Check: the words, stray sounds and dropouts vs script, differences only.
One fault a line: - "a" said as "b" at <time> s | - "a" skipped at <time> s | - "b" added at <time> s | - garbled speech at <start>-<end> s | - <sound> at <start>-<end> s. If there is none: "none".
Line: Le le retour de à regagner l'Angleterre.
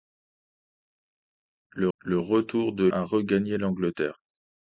none